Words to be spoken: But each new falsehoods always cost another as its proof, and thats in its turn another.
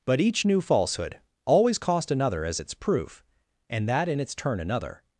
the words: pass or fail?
fail